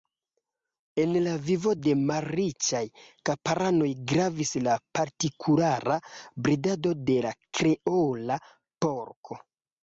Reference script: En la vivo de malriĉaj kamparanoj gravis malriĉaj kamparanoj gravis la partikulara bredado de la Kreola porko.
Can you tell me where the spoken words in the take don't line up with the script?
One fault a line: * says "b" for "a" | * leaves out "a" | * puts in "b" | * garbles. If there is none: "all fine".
* leaves out "malriĉaj kamparanoj gravis"